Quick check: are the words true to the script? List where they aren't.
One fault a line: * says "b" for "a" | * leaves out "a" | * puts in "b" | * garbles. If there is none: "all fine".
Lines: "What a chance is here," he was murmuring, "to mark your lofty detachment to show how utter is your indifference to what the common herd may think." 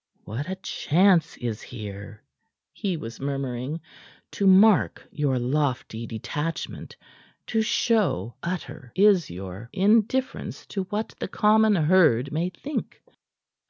* leaves out "how"